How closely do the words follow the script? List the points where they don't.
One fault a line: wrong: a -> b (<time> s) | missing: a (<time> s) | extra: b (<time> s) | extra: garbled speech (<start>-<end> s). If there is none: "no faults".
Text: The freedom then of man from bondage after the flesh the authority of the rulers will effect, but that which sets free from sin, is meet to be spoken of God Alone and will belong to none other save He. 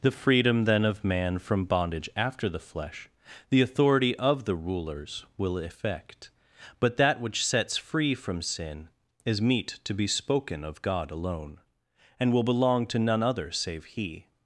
no faults